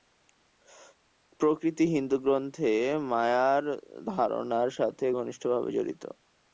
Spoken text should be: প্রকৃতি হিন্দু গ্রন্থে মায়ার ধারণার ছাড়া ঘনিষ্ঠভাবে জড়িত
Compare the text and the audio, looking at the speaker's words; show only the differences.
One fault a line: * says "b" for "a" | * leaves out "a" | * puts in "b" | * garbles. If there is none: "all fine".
* says "সাথে" for "ছাড়া"